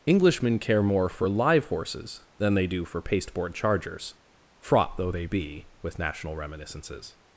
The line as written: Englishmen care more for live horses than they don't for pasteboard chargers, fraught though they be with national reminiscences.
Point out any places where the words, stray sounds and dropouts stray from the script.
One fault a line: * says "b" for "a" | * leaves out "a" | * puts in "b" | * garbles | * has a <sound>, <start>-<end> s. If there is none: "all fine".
* says "do" for "don't"